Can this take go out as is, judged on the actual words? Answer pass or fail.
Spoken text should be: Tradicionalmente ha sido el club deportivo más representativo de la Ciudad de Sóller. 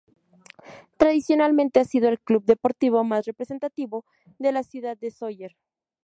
pass